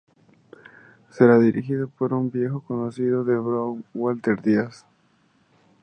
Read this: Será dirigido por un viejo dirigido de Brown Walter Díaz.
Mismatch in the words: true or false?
true